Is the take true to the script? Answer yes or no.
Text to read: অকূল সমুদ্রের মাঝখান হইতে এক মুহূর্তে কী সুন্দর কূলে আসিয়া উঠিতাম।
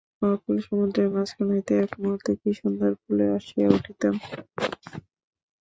yes